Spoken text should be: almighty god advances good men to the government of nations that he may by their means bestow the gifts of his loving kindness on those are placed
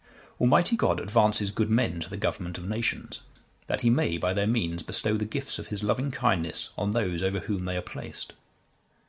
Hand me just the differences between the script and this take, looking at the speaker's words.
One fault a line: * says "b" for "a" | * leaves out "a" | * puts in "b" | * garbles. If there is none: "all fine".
* puts in "over whom they"